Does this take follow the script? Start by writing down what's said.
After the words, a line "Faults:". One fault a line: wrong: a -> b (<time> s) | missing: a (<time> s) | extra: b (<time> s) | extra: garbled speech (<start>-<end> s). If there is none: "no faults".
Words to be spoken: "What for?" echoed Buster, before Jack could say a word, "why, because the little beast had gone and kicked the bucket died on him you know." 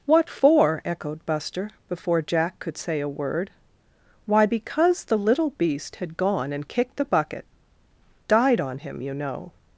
"What for?" echoed Buster, before Jack could say a word, "why, because the little beast had gone and kicked the bucket died on him you know."
Faults:
no faults